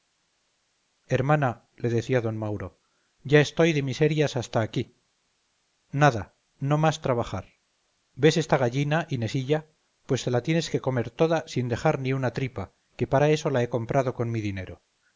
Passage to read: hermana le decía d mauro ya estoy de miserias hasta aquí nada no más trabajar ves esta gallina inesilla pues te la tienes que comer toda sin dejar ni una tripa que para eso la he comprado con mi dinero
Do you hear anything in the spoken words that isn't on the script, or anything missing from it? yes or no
no